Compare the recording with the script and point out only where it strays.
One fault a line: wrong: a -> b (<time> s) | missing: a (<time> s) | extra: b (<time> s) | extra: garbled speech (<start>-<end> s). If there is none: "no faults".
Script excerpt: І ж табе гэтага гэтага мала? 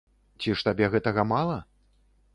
wrong: І -> Ці (0.4 s)
missing: гэтага (1.3 s)